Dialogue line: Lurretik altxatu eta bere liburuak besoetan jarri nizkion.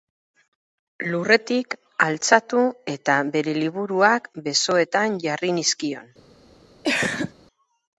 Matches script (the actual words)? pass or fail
pass